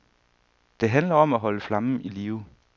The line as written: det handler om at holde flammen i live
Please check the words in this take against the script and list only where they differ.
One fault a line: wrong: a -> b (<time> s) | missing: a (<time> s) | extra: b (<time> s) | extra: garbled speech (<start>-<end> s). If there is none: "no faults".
no faults